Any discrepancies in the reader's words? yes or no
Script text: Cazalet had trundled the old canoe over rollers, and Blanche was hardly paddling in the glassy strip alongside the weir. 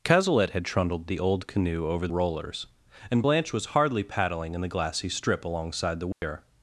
no